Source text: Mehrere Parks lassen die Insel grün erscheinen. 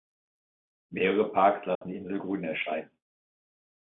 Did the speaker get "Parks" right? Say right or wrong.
right